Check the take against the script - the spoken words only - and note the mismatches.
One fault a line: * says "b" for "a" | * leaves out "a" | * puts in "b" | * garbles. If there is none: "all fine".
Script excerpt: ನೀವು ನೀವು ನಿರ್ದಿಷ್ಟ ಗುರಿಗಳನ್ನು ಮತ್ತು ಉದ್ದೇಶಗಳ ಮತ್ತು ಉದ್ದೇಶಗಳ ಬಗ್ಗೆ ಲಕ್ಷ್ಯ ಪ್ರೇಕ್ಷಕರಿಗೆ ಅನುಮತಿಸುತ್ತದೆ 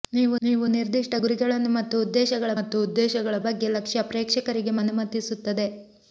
all fine